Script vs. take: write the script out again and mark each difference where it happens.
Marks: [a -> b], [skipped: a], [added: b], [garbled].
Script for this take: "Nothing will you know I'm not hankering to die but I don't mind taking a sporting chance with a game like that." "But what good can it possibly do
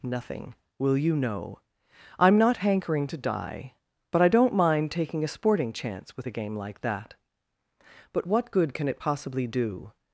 "Nothing will you know I'm not hankering to die but I don't mind taking a sporting chance with a game like that." "But what good can it possibly do